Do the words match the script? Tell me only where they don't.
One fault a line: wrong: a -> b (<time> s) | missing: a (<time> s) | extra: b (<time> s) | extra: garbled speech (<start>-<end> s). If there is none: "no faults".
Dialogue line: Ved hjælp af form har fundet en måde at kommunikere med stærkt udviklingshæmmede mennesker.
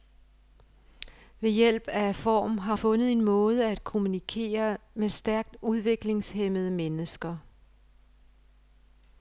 no faults